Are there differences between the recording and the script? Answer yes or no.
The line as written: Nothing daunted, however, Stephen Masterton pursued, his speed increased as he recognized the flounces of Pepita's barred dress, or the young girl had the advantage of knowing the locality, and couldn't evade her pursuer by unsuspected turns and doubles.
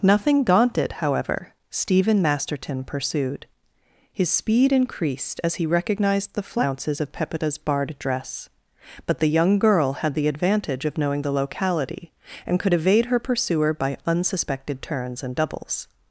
yes